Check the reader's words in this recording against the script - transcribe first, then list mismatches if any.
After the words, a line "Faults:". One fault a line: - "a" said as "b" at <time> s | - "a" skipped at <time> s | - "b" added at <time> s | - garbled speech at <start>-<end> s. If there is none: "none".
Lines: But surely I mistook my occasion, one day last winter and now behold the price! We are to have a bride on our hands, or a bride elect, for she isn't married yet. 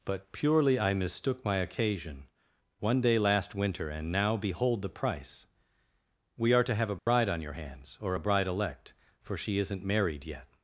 But purely I mistook my occasion, one day last winter and now behold the price! We are to have a bride on your hands, or a bride elect, for she isn't married yet.
Faults:
- "surely" said as "purely" at 0.3 s
- "our" said as "your" at 7.4 s